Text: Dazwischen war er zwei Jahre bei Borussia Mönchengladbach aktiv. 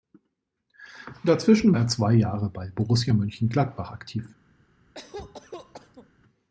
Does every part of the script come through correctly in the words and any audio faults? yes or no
no